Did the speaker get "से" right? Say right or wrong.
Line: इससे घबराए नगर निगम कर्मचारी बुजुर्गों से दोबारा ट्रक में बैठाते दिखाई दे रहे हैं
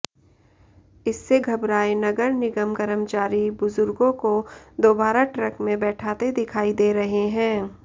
wrong